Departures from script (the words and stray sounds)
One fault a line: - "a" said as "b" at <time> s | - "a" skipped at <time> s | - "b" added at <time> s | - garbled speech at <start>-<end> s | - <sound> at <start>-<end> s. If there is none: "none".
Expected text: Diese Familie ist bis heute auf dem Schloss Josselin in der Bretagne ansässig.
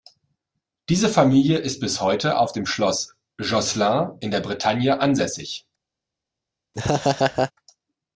- laugh at 6.7-7.5 s